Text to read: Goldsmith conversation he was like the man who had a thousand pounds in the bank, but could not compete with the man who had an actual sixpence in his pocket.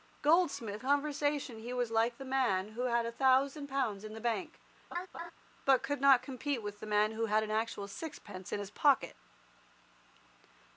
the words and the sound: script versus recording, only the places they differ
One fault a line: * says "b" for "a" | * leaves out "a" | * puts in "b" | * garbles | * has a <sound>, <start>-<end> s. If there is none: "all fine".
* has a laugh, 4.9-5.3 s